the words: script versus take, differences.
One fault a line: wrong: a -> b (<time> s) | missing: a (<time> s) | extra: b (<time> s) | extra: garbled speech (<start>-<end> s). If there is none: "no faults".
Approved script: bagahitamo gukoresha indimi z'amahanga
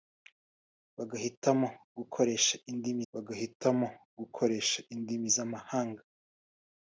extra: bagahitamo gukoresha indimi (3.1 s)